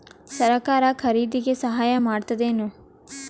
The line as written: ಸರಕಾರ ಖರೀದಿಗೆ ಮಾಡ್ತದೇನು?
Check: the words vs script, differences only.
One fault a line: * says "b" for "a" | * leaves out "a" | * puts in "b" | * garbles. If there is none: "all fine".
* puts in "ಸಹಾಯ"